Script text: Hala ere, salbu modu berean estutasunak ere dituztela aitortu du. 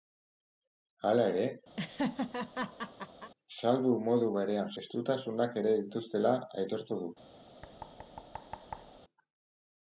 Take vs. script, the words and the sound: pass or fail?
fail